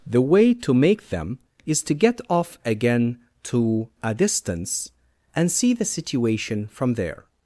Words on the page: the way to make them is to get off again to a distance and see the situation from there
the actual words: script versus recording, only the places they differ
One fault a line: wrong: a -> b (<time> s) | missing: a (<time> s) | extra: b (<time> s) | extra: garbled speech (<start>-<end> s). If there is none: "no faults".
no faults